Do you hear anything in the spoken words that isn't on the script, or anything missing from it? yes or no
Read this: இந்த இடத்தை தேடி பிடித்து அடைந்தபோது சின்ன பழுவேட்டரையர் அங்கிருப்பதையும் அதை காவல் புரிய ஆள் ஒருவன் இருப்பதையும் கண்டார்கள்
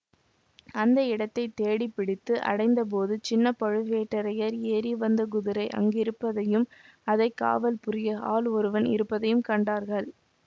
yes